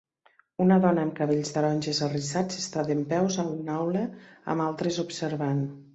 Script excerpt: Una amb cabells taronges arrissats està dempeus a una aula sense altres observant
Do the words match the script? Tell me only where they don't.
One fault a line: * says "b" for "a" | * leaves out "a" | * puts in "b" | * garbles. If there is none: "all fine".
* puts in "dona"
* says "amb" for "sense"